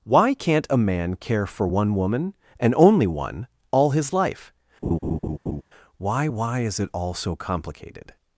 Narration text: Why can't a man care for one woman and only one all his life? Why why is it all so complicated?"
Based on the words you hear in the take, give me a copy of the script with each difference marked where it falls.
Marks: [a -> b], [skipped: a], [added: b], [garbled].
Why can't a man care for one woman and only one all his life? Why why is it all so complicated?"